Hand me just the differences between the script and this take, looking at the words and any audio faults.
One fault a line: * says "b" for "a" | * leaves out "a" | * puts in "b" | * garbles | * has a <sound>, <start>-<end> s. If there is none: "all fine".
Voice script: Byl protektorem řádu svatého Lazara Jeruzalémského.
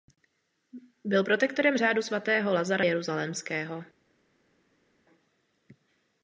all fine